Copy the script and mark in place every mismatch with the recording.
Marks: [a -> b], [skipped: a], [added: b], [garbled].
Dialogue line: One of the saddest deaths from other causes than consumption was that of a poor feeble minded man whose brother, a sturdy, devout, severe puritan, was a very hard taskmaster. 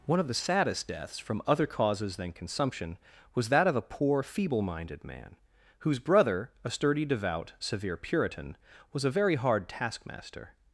One of the saddest deaths from other causes than consumption was that of a poor feeble minded man whose brother, a sturdy, devout, severe puritan, was a very hard taskmaster.